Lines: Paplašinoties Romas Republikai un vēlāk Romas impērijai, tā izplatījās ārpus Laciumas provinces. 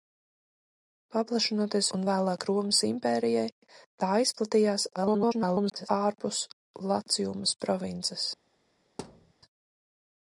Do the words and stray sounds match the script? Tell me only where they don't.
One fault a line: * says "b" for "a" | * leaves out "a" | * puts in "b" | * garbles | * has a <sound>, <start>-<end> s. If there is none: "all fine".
* leaves out "Romas Republikai"
* garbles
* has a thud, 9.0-9.3 s